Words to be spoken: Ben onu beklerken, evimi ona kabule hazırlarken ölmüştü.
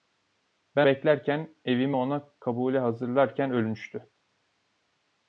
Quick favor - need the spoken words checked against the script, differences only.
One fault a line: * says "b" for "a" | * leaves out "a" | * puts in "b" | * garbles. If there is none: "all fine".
* leaves out "onu"